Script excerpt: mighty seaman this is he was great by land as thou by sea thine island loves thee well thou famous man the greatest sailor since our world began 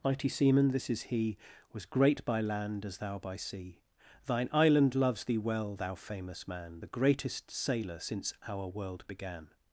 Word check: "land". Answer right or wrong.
right